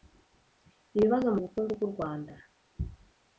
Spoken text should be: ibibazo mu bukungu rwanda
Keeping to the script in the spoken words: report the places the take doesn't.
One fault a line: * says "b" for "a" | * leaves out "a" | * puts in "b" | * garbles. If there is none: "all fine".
* puts in "bw'u"